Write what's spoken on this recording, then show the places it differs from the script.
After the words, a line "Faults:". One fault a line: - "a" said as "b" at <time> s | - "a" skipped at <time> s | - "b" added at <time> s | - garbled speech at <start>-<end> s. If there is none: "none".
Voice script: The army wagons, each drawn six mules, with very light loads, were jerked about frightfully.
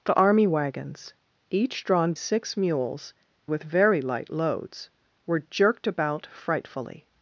The army wagons, each drawn six mules, with very light loads, were jerked about frightfully.
Faults:
none